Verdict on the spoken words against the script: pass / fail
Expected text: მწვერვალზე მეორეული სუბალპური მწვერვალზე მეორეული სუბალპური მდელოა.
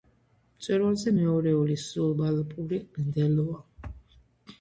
fail